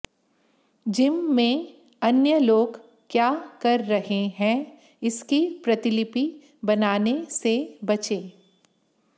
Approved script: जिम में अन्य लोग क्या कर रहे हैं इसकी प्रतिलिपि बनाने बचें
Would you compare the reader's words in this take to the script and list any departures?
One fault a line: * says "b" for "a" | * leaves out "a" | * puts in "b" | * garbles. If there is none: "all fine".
* puts in "से"